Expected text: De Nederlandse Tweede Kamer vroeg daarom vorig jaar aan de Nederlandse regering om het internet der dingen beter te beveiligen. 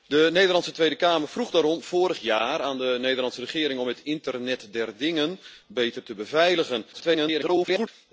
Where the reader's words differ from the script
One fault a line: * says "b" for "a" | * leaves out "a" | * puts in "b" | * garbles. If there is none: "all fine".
* garbles